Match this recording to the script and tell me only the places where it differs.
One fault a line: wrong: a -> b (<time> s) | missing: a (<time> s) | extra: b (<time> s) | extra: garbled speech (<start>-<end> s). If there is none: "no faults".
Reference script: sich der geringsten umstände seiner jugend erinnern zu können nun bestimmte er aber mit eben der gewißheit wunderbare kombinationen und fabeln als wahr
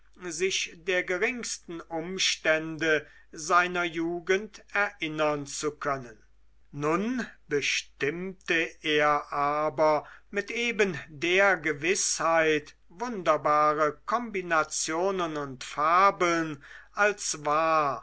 no faults